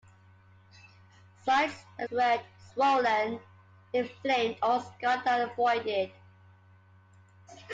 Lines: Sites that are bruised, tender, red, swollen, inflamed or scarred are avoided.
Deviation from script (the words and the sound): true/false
true